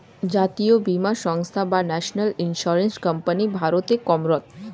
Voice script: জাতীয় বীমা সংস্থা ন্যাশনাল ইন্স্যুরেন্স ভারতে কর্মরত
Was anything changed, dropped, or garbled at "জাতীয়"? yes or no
no